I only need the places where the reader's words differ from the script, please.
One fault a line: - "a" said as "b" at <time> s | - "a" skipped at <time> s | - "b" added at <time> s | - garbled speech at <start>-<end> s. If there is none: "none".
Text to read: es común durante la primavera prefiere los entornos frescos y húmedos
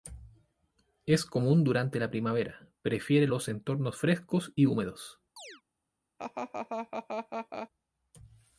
none